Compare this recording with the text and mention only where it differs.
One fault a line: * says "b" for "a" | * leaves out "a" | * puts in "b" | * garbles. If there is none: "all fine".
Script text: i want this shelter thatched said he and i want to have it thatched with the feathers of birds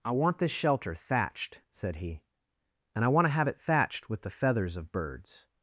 all fine